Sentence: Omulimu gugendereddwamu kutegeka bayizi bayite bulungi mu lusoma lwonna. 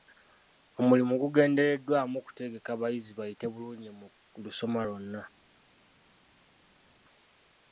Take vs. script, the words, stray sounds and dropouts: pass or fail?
pass